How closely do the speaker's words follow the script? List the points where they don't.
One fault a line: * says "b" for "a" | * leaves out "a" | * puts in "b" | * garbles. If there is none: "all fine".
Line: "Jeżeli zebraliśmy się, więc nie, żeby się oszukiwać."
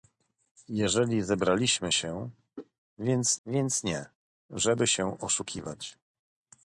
* puts in "więc"